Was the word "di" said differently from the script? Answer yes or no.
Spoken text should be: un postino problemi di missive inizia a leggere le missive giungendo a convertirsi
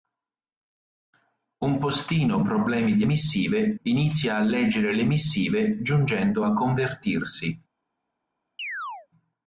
no